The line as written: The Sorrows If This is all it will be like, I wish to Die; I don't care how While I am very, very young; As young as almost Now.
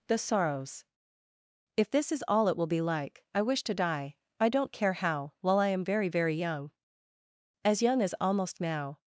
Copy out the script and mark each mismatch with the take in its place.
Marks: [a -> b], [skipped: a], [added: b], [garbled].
The Sorrows If This is all it will be like, I wish to Die; I don't care how While I am very, very young; As young as almost Now.